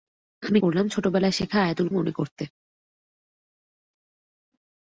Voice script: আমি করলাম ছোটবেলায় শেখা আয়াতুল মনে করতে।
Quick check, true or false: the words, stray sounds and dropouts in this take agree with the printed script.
true